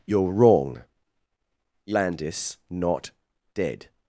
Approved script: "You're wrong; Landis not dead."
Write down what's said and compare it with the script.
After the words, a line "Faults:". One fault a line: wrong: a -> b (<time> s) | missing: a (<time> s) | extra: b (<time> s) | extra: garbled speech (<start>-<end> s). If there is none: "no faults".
"You're wrong; Landis not dead."
Faults:
no faults